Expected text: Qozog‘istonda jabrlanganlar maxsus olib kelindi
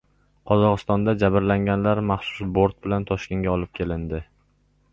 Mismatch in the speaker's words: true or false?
true